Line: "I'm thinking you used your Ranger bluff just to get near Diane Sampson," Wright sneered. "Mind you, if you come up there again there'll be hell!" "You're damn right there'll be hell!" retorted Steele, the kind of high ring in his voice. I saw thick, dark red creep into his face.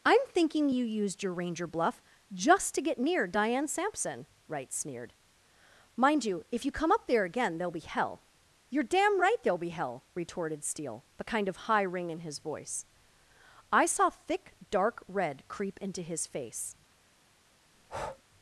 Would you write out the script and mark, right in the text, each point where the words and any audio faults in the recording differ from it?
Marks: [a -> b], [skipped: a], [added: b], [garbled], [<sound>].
"I'm thinking you used your Ranger bluff just to get near Diane Sampson," Wright sneered. "Mind you, if you come up there again there'll be hell!" "You're damn right there'll be hell!" retorted Steele, the kind of high ring in his voice. I saw thick, dark red creep into his face. [breath]